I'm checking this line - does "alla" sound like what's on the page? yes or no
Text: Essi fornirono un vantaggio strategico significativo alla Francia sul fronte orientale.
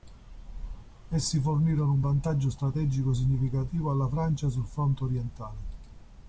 yes